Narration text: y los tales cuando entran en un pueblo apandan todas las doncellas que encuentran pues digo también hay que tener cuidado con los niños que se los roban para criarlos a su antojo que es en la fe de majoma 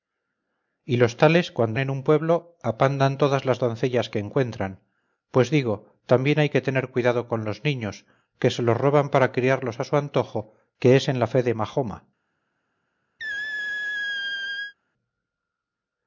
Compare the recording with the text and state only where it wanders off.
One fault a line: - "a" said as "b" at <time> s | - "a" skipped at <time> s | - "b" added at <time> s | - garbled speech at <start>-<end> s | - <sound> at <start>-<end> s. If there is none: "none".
- "entran" skipped at 1.8 s
- squeak at 13.2-14.7 s